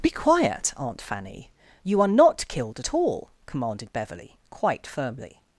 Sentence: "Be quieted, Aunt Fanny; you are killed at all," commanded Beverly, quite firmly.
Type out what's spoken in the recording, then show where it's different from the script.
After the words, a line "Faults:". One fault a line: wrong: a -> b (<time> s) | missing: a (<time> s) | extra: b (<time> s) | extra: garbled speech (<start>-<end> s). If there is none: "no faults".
"Be quiet, Aunt Fanny; you are not killed at all," commanded Beverly, quite firmly.
Faults:
wrong: quieted -> quiet (0.1 s)
extra: not (2.1 s)